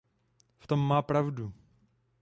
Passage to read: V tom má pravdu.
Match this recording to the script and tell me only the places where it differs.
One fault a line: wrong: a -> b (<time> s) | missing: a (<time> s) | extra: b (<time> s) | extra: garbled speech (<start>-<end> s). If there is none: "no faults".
no faults